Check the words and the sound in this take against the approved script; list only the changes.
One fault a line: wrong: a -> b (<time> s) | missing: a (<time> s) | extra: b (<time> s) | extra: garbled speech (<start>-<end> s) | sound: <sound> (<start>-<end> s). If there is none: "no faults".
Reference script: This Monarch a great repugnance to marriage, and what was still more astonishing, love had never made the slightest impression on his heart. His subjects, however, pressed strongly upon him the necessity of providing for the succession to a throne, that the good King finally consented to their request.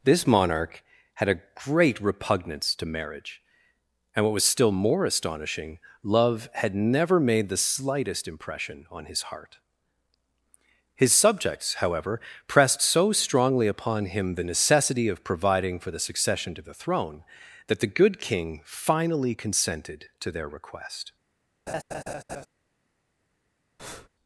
extra: had (1.1 s)
extra: so (12.8 s)
wrong: a -> the (16.6 s)
sound: laugh (21.7-22.5 s)
sound: breath (23.8-24.1 s)